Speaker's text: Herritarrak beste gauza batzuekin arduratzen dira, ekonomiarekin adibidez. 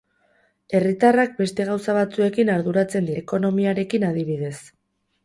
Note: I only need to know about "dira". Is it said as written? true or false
false